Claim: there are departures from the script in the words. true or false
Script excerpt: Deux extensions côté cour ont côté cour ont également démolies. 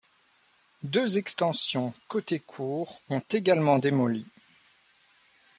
true